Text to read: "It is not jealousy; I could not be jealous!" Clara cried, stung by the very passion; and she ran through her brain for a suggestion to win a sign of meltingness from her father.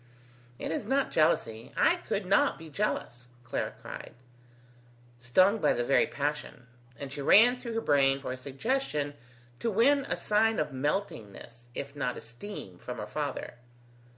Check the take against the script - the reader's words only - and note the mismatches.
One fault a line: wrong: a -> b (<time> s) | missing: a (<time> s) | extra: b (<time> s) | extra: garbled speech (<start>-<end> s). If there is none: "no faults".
extra: if not esteem (11.7 s)